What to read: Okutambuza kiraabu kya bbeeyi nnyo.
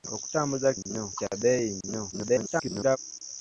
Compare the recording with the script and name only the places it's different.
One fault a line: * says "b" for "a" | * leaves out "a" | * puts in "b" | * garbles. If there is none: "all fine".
* says "nnyo" for "kiraabu"
* garbles